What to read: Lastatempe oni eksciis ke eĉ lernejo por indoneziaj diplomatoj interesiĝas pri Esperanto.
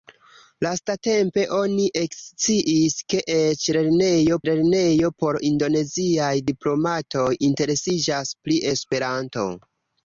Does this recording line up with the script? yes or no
no